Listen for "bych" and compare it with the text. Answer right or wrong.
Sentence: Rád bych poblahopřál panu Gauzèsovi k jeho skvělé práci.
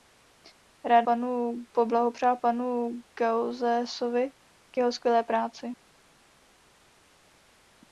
wrong